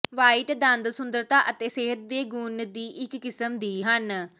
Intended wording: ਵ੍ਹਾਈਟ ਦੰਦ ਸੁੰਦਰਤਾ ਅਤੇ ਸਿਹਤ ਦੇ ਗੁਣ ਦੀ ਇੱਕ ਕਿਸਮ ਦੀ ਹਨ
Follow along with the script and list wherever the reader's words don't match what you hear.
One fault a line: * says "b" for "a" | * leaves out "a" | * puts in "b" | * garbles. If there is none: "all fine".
all fine